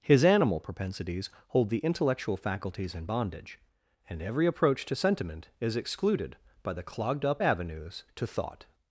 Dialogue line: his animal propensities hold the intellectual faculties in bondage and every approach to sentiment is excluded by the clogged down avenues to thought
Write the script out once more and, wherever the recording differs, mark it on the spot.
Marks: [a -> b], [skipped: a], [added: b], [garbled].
his animal propensities hold the intellectual faculties in bondage and every approach to sentiment is excluded by the clogged [down -> up] avenues to thought